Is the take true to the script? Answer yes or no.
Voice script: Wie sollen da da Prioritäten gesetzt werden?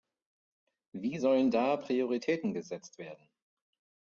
no